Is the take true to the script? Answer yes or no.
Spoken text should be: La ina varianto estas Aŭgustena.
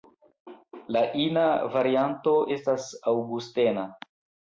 yes